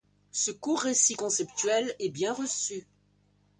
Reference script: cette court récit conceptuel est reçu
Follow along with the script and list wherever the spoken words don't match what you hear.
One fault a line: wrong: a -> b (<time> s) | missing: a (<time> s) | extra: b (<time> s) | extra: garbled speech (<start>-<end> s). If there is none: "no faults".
wrong: cette -> ce (0.3 s)
extra: bien (2.1 s)